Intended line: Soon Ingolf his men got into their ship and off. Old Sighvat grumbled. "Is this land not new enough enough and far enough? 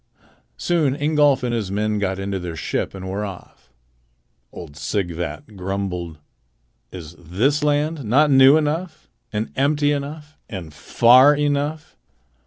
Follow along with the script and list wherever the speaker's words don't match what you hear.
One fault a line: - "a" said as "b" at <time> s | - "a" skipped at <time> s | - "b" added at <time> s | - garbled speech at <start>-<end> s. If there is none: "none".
- "and" added at 1.4 s
- "were" added at 3.1 s
- "and empty" added at 9.3 s